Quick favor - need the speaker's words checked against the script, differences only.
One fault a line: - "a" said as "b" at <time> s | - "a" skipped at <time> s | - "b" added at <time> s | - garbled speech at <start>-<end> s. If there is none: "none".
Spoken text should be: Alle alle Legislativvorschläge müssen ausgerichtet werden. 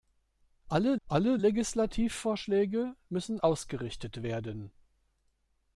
none